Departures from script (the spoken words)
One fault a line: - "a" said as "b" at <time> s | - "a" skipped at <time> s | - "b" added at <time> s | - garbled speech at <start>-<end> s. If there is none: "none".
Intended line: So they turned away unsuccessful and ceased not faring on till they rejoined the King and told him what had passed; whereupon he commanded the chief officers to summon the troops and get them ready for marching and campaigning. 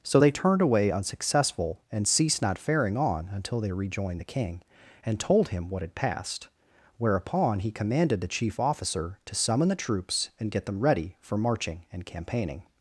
- "till" said as "until" at 3.3 s
- "officers" said as "officer" at 8.6 s